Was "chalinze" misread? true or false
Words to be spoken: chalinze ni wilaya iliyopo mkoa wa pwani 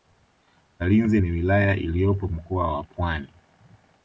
false